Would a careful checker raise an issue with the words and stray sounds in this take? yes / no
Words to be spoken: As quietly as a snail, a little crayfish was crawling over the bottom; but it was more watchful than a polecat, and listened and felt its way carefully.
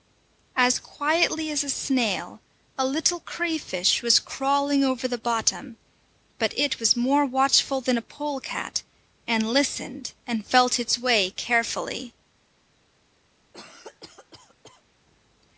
yes